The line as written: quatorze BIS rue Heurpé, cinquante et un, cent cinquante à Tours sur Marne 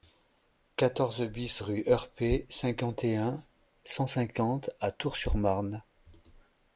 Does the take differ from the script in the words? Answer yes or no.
no